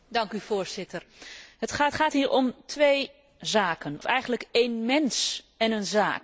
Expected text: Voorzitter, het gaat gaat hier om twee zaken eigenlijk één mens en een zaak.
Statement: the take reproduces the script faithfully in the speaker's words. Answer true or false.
true